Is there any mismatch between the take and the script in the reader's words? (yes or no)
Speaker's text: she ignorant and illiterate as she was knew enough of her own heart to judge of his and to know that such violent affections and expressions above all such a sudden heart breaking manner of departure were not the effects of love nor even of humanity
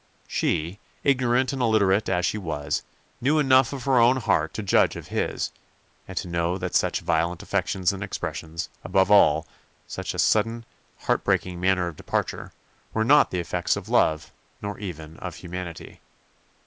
no